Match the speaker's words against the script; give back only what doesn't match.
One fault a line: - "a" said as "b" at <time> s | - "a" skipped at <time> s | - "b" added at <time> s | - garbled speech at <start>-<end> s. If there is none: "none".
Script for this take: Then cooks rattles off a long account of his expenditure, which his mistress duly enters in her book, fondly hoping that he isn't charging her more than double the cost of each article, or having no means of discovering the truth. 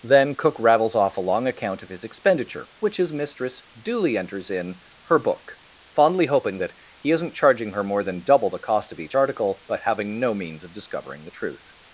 - "cooks" said as "cook" at 0.3 s
- "or" said as "but" at 9.6 s